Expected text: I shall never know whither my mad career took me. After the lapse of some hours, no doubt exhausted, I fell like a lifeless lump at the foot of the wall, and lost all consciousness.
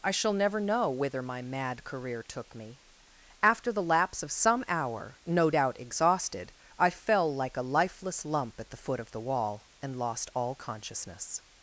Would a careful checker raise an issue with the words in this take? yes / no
yes